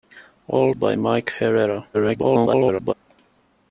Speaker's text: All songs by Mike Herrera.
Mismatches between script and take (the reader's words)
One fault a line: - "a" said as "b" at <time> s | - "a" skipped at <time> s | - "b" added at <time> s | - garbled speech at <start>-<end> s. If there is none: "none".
- "songs" skipped at 0.7 s
- garbled speech at 1.9-2.9 s